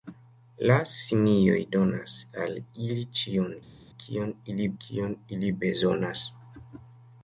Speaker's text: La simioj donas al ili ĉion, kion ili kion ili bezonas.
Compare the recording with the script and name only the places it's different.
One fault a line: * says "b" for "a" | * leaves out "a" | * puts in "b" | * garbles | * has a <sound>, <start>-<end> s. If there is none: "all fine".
all fine